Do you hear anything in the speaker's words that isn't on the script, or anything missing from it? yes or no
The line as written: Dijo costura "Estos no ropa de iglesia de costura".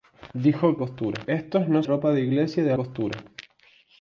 no